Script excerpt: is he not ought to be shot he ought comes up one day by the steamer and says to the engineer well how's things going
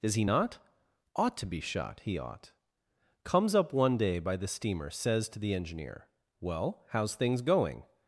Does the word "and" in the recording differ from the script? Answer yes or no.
yes